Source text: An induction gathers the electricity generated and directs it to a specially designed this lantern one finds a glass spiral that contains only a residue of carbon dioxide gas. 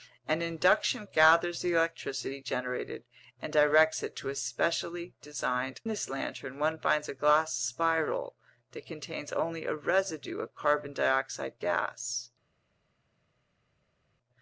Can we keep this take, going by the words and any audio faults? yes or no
yes